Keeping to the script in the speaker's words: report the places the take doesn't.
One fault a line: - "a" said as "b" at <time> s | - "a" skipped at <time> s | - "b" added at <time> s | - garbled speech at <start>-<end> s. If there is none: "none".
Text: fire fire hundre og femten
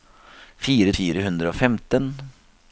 none